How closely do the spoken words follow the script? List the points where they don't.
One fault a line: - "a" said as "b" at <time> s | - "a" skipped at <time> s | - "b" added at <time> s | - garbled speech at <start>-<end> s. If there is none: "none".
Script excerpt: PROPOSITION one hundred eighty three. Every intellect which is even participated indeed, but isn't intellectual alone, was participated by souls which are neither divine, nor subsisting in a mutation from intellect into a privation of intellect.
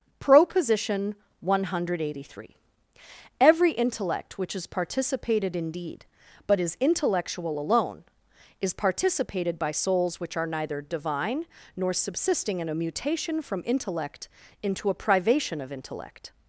- "even" skipped at 4.7 s
- "isn't" said as "is" at 6.6 s
- "was" said as "is" at 8.6 s